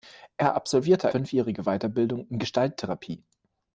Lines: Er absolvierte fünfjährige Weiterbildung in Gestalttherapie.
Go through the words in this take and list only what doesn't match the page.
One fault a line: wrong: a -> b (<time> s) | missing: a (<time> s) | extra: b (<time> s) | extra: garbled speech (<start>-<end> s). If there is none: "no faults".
no faults